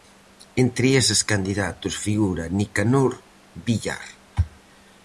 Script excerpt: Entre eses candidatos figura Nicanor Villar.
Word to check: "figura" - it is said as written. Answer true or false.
true